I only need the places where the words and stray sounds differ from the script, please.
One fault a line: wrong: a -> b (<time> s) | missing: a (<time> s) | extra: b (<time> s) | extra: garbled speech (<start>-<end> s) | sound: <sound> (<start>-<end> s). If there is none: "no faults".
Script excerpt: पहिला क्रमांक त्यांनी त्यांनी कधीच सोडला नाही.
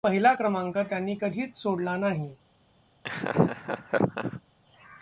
missing: त्यांनी (1.1 s)
sound: laugh (3.0-4.4 s)